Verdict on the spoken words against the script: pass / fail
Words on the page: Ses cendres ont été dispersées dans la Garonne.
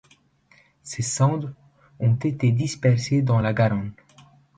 pass